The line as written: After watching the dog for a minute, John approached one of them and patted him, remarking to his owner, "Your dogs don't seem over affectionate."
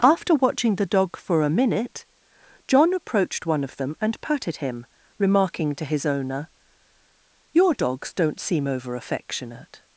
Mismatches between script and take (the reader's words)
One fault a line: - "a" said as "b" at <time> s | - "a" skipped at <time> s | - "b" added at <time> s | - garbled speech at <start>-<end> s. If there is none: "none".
none